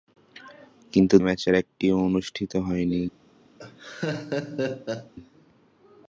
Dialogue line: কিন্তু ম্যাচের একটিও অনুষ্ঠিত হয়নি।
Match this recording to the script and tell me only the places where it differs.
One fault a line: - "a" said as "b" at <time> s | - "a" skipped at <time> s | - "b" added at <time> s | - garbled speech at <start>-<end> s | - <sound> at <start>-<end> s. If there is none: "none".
- laugh at 3.6-5.1 s